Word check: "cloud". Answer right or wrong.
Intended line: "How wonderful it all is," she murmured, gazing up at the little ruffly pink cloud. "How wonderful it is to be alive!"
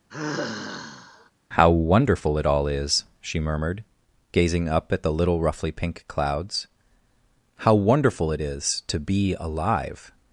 wrong